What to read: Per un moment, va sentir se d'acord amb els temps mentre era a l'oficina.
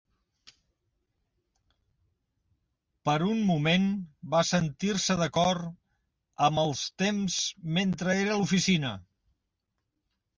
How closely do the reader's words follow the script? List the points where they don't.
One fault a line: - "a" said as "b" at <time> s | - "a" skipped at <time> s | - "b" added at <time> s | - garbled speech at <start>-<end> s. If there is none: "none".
none